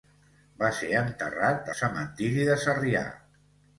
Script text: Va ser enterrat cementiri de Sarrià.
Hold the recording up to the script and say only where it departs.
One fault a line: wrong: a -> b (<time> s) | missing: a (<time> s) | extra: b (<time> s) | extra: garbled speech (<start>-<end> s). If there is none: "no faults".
no faults